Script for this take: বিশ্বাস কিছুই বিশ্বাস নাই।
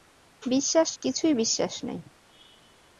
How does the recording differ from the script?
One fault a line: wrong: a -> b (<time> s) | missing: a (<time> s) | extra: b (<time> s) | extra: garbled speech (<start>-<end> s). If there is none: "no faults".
no faults